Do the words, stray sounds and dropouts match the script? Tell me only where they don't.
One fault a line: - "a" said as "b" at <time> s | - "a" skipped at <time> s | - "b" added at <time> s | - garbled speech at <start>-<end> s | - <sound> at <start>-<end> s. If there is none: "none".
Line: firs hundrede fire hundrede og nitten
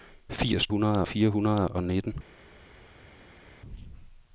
none